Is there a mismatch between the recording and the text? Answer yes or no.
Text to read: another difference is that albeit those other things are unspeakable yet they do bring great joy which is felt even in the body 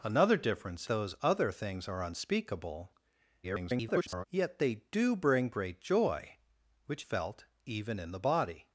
yes